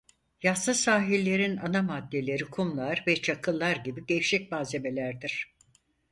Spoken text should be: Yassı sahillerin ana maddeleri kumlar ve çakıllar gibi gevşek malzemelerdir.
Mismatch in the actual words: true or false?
false